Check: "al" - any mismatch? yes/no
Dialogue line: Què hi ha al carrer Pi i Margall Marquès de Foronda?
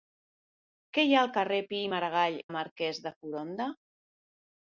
no